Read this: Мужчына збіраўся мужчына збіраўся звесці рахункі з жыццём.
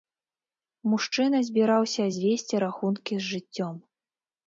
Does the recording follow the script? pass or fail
fail